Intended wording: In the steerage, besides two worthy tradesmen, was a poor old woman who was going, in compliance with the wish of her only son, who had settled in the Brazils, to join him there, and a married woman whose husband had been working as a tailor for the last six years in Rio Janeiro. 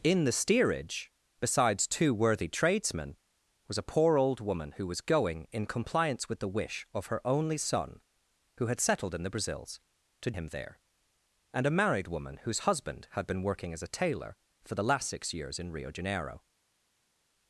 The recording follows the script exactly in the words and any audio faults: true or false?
false